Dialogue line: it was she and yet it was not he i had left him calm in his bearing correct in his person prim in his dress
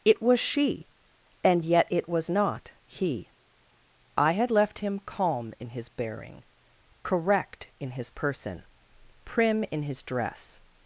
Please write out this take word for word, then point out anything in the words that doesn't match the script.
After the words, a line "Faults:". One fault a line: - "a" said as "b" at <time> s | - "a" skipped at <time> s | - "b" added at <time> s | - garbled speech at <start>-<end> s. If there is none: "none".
it was she and yet it was not he i had left him calm in his bearing correct in his person prim in his dress
Faults:
none